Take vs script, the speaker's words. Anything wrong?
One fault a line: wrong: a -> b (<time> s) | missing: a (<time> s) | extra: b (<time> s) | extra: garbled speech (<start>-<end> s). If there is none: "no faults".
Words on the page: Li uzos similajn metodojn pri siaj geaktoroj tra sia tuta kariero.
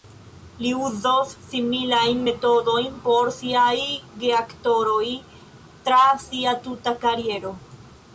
wrong: pri -> por (3.1 s)